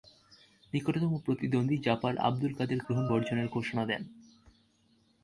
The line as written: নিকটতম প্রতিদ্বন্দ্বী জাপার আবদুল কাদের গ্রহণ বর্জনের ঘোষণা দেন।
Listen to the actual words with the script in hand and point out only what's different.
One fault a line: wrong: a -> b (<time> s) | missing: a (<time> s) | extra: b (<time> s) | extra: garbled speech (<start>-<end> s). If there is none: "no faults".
no faults